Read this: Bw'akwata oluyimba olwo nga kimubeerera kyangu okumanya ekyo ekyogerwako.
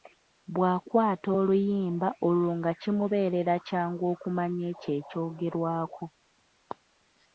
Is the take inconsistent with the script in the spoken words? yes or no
no